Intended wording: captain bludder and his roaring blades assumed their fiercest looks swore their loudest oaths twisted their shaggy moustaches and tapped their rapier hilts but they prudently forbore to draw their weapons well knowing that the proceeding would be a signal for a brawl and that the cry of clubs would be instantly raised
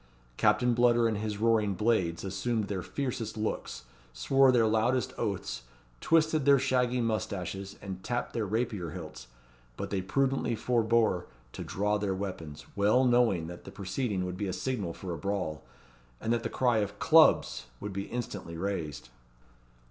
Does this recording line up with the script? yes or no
yes